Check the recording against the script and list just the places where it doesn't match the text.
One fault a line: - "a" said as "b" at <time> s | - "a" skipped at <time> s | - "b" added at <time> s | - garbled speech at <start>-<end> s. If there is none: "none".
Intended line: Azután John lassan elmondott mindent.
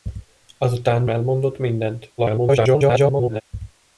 - "John lassan" skipped at 1.0 s
- garbled speech at 2.2-3.4 s